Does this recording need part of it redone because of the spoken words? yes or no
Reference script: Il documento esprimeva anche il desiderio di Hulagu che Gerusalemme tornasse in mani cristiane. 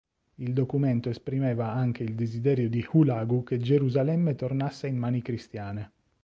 no